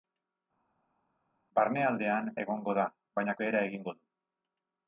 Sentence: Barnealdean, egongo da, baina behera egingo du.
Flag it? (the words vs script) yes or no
no